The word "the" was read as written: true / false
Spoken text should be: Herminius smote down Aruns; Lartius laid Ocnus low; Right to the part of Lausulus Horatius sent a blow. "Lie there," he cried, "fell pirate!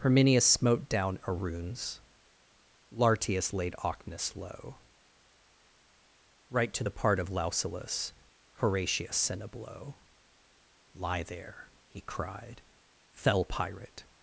true